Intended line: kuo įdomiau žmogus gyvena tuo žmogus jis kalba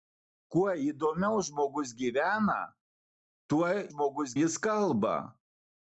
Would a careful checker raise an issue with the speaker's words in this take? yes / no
no